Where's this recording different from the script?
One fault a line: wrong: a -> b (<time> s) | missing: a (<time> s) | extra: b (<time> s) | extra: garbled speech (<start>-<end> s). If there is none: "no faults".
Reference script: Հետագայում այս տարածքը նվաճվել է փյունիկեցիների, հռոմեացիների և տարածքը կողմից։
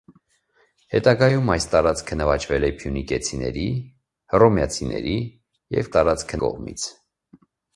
no faults